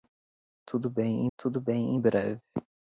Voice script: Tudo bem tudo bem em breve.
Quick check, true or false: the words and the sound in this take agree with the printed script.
true